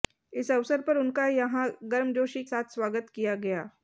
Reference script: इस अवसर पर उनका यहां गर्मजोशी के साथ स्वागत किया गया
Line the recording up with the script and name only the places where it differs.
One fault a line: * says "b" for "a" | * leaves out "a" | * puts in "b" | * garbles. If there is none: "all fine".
* leaves out "के"